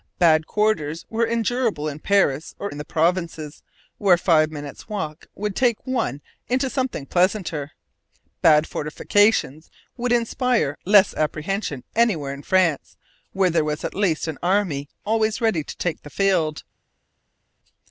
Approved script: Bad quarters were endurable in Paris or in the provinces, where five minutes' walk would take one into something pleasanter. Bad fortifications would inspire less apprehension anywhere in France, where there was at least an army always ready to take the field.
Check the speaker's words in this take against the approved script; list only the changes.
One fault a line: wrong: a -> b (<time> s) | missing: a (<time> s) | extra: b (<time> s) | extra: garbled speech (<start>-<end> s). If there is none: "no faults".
no faults